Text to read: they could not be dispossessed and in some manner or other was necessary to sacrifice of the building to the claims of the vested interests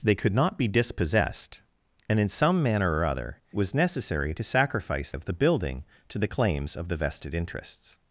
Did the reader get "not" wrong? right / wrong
right